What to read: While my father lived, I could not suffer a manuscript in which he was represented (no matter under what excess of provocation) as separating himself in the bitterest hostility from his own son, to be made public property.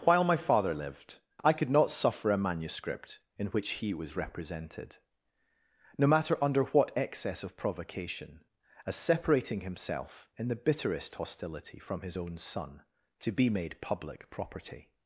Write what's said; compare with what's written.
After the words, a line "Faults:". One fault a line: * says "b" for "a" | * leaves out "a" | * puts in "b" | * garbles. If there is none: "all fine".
While my father lived, I could not suffer a manuscript in which he was represented (no matter under what excess of provocation) as separating himself in the bitterest hostility from his own son, to be made public property.
Faults:
all fine